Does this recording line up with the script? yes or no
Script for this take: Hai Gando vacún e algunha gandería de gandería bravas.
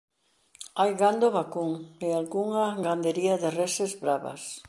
no